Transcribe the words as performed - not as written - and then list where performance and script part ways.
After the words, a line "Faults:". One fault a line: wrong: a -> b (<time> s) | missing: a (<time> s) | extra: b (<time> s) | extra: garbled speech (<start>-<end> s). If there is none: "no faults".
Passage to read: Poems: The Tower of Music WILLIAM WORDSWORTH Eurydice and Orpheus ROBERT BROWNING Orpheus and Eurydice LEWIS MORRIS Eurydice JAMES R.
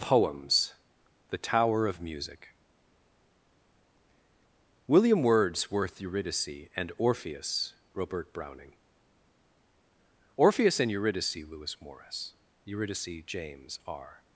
Poems: The Tower of Music WILLIAM WORDSWORTH Eurydice and Orpheus ROBERT BROWNING Orpheus and Eurydice LEWIS MORRIS Eurydice JAMES R.
Faults:
no faults